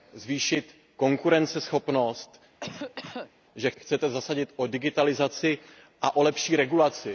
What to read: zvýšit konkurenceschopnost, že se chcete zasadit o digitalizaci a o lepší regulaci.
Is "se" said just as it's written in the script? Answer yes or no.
no